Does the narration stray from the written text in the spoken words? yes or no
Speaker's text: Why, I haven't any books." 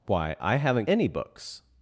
no